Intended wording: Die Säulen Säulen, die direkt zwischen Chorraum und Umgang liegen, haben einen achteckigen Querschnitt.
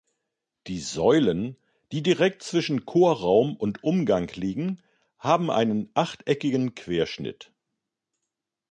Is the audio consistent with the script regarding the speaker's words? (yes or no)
no